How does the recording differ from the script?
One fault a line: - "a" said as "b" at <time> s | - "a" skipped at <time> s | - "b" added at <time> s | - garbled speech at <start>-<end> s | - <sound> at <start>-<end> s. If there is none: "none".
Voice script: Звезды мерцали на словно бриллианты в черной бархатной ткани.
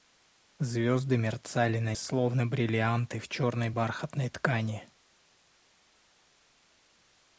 none